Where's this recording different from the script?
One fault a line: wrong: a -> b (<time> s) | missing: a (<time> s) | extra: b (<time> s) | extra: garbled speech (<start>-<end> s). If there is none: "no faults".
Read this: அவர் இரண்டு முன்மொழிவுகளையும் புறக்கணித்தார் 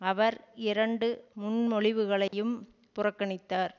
no faults